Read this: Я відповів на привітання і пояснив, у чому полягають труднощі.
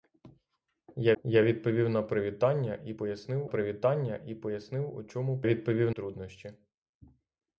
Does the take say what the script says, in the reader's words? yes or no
no